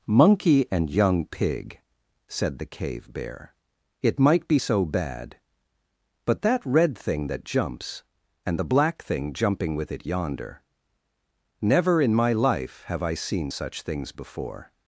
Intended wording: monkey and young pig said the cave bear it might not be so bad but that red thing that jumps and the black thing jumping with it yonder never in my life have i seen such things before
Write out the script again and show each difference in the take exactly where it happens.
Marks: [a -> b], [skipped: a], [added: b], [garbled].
monkey and young pig said the cave bear it might [skipped: not] be so bad but that red thing that jumps and the black thing jumping with it yonder never in my life have i seen such things before